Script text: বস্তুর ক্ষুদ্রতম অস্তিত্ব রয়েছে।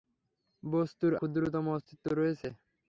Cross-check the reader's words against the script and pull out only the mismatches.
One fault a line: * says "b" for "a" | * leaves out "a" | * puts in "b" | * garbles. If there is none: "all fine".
all fine